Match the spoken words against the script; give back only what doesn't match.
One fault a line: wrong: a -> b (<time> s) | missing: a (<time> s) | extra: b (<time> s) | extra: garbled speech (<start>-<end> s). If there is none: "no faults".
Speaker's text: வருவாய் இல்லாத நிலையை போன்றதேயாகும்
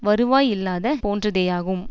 missing: நிலையை (0.9 s)